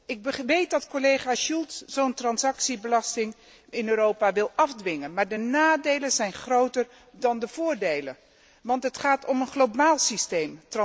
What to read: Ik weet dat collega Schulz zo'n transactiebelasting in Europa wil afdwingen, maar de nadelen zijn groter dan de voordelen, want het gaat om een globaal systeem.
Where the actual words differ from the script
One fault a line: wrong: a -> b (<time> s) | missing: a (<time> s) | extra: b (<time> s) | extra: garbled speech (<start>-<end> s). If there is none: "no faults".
no faults